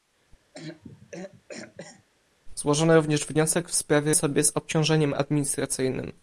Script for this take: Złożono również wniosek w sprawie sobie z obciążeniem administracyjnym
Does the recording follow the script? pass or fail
pass